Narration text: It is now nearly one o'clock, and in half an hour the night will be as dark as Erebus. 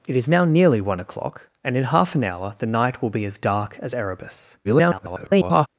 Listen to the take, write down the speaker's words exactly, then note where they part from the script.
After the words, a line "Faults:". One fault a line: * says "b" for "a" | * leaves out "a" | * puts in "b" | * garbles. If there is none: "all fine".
It is now nearly one o'clock, and in half an hour the night will be as dark as Erebus. [garbled]
Faults:
* garbles